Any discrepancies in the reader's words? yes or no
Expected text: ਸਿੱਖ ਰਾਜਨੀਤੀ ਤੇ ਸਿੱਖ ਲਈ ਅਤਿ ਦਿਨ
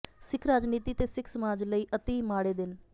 yes